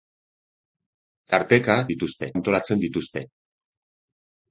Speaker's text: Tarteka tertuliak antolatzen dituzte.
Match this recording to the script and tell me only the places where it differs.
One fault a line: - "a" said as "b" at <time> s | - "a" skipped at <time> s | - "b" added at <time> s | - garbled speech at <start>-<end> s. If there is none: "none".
- "tertuliak" said as "dituzte" at 1.9 s